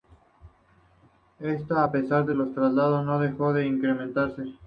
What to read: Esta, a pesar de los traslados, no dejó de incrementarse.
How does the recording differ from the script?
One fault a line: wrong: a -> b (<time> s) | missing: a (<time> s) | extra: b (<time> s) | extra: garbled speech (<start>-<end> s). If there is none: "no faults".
no faults